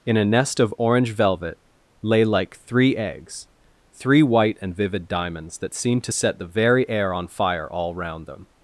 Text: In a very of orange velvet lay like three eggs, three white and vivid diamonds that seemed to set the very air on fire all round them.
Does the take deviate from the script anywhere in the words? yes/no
yes